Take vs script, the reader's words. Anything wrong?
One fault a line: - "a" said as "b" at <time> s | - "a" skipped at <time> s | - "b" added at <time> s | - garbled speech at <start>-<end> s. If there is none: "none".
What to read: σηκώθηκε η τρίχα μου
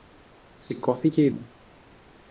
- "τρίχα" skipped at 1.3 s